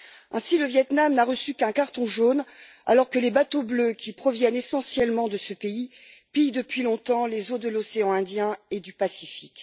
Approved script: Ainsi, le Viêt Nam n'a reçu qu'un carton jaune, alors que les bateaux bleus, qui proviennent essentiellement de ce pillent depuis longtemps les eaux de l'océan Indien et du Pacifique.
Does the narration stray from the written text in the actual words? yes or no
yes